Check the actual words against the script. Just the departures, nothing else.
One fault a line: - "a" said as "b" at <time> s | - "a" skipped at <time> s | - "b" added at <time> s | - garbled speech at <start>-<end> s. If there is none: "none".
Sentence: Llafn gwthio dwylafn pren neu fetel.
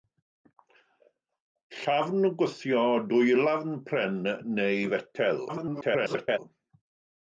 - garbled speech at 5.5-6.4 s